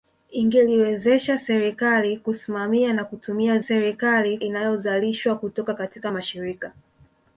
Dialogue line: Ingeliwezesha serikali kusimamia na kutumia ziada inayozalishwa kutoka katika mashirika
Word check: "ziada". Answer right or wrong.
wrong